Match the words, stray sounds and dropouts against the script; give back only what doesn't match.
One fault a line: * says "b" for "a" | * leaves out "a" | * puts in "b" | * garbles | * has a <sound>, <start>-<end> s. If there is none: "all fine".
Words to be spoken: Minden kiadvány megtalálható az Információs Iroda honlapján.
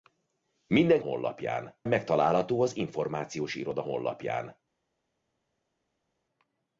* says "honlapján" for "kiadvány"